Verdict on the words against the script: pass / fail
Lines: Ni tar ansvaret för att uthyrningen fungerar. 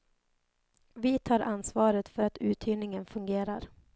fail